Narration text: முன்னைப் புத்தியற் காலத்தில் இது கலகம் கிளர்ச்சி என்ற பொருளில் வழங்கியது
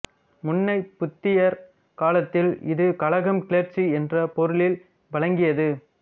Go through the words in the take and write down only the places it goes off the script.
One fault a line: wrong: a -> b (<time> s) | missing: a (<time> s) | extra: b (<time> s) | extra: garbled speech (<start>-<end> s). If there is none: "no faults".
no faults